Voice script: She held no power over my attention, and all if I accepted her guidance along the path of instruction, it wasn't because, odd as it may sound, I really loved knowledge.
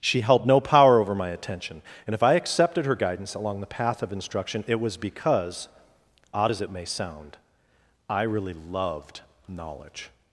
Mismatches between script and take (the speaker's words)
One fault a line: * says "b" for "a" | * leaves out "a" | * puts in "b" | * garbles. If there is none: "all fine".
* leaves out "all"
* says "was" for "wasn't"